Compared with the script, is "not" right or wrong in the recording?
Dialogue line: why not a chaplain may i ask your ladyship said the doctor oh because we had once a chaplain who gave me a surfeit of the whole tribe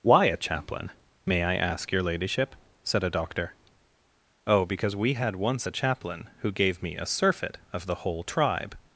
wrong